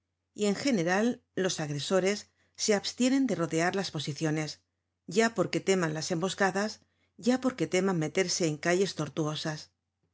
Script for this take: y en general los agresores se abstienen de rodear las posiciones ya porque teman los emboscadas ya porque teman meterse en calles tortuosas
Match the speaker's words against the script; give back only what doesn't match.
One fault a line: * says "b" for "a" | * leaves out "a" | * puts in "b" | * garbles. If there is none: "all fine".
* says "las" for "los"